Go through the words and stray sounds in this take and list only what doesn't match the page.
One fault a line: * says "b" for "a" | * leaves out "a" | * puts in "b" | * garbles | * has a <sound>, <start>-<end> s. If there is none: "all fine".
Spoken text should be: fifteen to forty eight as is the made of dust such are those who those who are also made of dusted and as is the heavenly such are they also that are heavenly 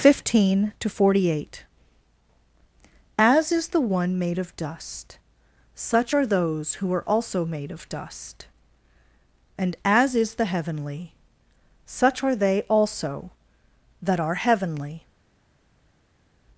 * puts in "one"
* leaves out "those who"
* says "dust" for "dusted"